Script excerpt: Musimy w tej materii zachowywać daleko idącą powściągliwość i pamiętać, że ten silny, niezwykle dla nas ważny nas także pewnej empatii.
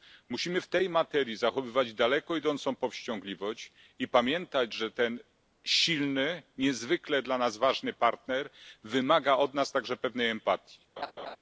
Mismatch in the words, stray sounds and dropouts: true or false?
true